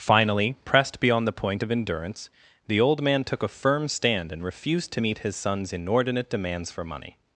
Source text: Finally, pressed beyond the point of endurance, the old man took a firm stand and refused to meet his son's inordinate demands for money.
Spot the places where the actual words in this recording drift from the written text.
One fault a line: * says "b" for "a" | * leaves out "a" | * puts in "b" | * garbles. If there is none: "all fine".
all fine